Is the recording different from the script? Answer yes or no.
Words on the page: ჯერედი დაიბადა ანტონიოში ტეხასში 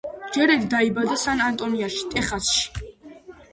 yes